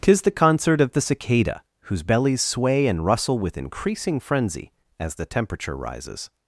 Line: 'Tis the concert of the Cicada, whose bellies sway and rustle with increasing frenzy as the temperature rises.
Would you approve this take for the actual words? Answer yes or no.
yes